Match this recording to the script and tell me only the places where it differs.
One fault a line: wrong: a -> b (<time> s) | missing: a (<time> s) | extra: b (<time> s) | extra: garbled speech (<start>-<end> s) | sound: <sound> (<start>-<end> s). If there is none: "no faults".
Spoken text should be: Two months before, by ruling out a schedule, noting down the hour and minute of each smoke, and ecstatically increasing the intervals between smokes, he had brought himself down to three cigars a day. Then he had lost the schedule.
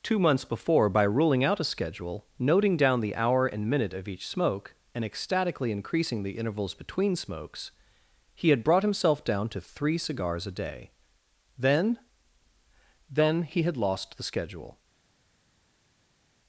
extra: Then (13.1 s)